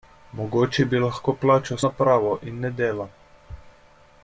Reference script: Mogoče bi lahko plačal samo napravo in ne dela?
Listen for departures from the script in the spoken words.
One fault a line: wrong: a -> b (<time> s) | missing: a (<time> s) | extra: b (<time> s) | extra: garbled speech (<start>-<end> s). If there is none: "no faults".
missing: samo (1.8 s)